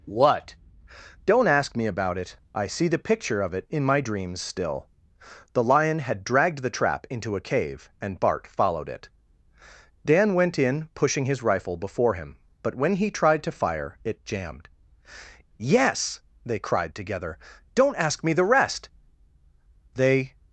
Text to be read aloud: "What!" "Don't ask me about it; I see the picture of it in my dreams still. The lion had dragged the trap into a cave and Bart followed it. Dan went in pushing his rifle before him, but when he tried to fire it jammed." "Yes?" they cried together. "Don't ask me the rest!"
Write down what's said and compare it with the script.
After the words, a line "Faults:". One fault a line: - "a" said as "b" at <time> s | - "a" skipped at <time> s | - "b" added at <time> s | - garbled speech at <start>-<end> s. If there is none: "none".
"What!" "Don't ask me about it; I see the picture of it in my dreams still. The lion had dragged the trap into a cave and Bart followed it. Dan went in pushing his rifle before him, but when he tried to fire it jammed." "Yes?" they cried together. "Don't ask me the rest!" They
Faults:
- "They" added at 19.9 s